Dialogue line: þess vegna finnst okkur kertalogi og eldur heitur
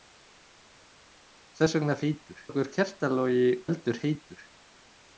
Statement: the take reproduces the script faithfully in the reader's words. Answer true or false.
false